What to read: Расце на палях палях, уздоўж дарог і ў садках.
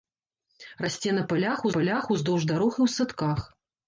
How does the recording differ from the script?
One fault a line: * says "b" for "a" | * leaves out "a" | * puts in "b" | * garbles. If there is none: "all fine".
all fine